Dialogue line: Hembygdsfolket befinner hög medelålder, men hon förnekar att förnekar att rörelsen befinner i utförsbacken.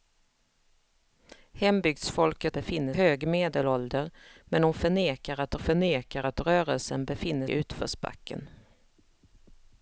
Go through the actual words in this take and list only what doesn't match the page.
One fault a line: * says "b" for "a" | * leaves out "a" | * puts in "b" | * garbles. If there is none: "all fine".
all fine